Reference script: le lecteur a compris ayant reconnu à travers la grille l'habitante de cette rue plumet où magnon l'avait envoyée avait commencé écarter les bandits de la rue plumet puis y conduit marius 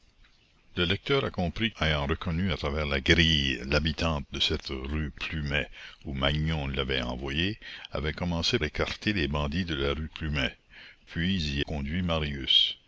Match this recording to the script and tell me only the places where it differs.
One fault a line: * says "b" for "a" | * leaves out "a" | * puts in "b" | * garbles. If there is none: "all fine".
all fine